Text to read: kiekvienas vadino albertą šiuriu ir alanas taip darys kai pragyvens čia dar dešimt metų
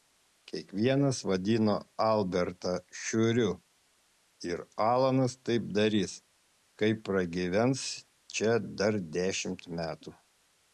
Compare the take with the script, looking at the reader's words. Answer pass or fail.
pass